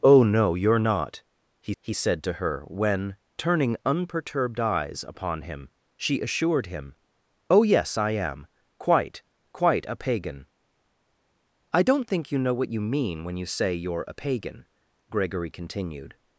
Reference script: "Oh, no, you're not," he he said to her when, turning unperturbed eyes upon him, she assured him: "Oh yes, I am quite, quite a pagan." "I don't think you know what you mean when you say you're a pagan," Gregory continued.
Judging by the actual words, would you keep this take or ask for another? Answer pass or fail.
pass